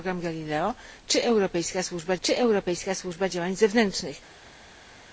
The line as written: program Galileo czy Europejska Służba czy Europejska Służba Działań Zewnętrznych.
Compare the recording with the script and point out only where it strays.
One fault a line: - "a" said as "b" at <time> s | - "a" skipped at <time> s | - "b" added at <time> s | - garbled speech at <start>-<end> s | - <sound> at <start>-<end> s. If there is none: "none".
none